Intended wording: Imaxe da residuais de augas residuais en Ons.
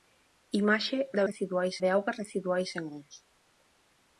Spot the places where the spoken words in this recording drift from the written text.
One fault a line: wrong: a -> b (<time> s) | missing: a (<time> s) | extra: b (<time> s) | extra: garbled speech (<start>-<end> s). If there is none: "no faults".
no faults